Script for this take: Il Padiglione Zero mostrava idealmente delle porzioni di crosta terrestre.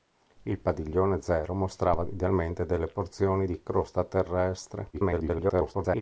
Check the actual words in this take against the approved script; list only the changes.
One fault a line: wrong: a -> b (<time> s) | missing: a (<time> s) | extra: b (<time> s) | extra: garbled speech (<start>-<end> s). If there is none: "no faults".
extra: garbled speech (4.9-6.0 s)